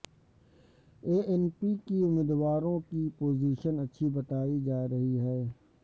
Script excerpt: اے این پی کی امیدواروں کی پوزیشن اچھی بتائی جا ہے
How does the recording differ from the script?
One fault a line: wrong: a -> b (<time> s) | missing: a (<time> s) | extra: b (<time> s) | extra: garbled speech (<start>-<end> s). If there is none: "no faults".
extra: رہی (4.9 s)